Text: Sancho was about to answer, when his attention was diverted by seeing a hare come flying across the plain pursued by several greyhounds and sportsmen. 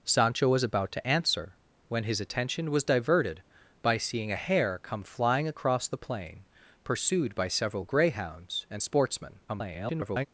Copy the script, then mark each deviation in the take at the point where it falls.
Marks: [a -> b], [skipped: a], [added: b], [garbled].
Sancho was about to answer, when his attention was diverted by seeing a hare come flying across the plain pursued by several greyhounds and sportsmen. [garbled]